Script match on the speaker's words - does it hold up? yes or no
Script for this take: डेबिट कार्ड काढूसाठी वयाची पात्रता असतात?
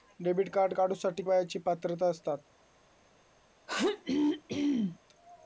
yes